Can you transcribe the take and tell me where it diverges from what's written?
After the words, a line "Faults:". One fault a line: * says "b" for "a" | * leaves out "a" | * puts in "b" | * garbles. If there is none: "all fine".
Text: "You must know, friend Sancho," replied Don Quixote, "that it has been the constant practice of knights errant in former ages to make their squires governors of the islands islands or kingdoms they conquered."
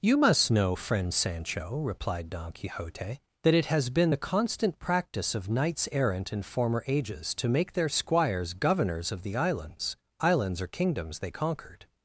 "You must know, friend Sancho," replied Don Quixote, "that it has been the constant practice of knights errant in former ages to make their squires governors of the islands islands or kingdoms they conquered."
Faults:
all fine